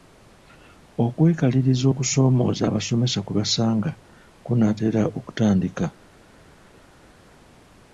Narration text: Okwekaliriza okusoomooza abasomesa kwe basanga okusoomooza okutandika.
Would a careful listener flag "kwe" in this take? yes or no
no